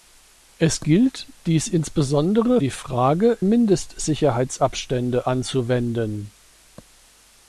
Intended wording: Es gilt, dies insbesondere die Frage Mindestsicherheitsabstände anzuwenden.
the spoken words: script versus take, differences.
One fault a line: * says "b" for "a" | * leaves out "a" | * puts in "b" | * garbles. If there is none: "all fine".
all fine